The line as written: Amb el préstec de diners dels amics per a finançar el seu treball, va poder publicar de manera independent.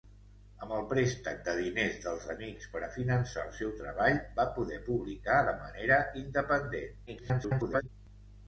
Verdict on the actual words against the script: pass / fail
fail